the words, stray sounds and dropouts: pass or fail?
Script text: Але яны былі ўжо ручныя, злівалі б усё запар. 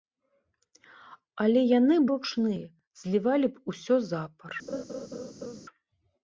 fail